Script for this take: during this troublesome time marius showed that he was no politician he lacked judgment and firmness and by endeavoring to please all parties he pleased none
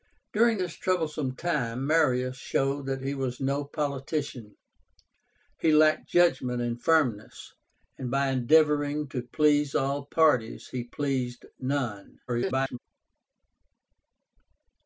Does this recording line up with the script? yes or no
no